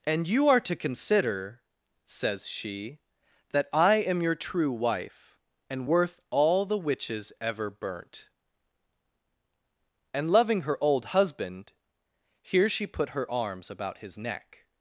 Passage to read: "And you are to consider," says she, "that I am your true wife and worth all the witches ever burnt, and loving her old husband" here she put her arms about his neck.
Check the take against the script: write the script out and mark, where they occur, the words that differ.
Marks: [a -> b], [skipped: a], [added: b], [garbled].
"And you are to consider," says she, "that I am your true wife and worth all the witches ever burnt, and loving her old husband" here she put her arms about his neck.